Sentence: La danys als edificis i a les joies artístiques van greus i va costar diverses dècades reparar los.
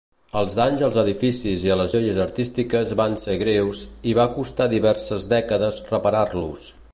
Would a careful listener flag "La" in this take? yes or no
yes